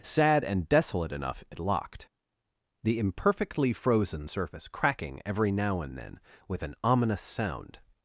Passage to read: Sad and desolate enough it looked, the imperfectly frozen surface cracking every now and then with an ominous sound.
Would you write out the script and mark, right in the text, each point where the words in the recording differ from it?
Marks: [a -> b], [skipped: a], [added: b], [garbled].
Sad and desolate enough it [looked, -> locked] the imperfectly frozen surface cracking every now and then with an ominous sound.